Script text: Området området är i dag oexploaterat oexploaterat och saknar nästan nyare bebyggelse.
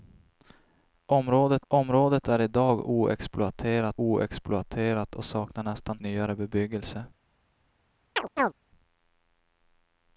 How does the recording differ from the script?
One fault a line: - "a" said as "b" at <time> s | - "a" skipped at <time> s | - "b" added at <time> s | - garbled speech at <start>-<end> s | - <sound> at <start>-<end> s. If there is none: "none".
- chirp at 8.2-8.5 s